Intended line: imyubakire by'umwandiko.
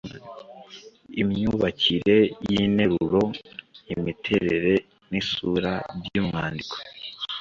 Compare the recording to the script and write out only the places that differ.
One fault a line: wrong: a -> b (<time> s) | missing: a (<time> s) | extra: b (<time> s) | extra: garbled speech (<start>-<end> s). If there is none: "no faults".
extra: y'interuro imiterere n'isura (2.5 s)